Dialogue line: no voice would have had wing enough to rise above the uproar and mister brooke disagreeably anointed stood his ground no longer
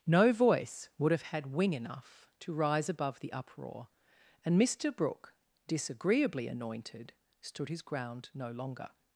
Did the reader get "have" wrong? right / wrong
right